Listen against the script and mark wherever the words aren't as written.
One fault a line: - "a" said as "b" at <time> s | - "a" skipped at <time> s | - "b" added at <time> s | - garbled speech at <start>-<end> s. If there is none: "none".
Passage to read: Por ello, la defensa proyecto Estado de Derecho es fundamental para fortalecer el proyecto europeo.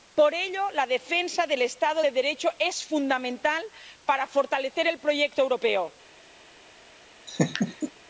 - "proyecto" said as "del" at 1.5 s